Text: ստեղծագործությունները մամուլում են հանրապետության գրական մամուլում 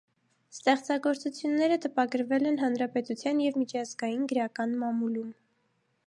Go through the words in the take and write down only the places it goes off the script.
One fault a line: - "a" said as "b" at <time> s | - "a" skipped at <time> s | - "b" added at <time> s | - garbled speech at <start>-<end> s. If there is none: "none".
- "մամուլում" said as "տպագրվել" at 1.8 s
- "և միջազգային" added at 3.4 s